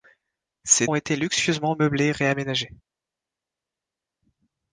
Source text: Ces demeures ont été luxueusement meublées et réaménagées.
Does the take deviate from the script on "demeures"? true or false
true